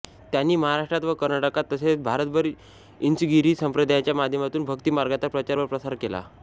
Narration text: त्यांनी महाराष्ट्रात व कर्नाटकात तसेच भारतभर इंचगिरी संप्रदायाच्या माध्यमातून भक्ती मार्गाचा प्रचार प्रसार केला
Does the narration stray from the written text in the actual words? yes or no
yes